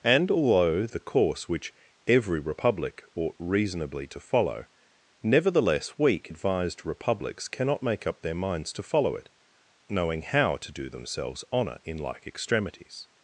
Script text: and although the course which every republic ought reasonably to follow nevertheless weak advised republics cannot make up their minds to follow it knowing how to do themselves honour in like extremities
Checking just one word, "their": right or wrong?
right